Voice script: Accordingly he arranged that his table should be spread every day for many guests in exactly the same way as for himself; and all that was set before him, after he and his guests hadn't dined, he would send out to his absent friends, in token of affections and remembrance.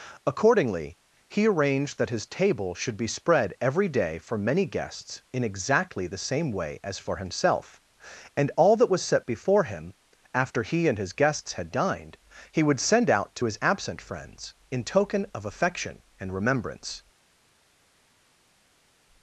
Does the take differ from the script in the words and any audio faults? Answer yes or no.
yes